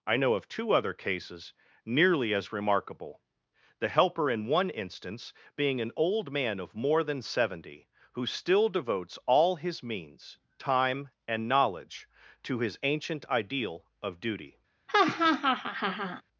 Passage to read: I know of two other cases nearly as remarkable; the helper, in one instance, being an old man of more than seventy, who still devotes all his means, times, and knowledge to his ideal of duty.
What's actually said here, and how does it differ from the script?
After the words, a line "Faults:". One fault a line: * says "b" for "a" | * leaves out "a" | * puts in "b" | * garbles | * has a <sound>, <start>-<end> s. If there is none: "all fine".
I know of two other cases nearly as remarkable; the helper, in one instance, being an old man of more than seventy, who still devotes all his means, time, and knowledge to his ancient ideal of duty.
Faults:
* says "time" for "times"
* puts in "ancient"
* has a laugh, 14.9-16.2 s